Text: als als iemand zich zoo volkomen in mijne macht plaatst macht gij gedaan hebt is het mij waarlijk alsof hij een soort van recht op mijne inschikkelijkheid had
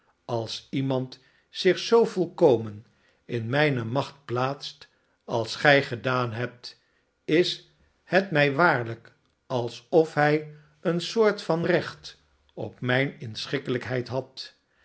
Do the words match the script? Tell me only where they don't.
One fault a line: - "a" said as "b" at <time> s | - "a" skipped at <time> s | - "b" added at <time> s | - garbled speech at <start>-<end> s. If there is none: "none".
- "als" skipped at 0.7 s
- "macht" said as "als" at 5.2 s